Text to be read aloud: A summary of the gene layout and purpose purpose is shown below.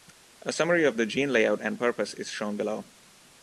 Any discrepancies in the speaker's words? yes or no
yes